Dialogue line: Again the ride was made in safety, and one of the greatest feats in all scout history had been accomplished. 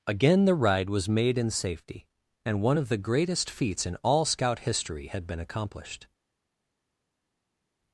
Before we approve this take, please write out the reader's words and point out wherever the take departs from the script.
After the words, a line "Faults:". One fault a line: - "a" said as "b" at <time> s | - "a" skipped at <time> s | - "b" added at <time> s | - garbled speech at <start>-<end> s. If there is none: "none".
Again the ride was made in safety, and one of the greatest feats in all scout history had been accomplished.
Faults:
none